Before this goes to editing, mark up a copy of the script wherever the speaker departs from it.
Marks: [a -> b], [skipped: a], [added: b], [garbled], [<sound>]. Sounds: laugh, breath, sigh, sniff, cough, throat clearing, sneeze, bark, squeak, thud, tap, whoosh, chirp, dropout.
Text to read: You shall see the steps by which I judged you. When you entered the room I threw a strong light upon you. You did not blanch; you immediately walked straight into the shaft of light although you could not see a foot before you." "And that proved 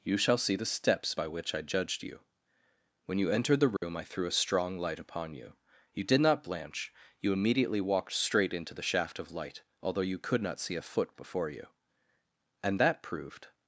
You shall see the steps by which I judged you. When you entered the room [dropout] I threw a strong light upon you. You did not blanch; you immediately walked straight into the shaft of light although you could not see a foot before you." "And that proved